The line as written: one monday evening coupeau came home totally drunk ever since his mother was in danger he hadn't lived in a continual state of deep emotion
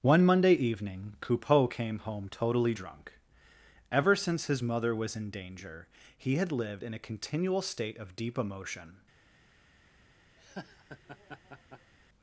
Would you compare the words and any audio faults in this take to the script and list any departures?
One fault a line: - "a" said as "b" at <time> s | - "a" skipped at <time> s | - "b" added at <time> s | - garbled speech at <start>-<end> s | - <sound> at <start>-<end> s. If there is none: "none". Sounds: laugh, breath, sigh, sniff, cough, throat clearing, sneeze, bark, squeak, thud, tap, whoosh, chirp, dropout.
- "hadn't" said as "had" at 6.4 s
- laugh at 10.4-11.9 s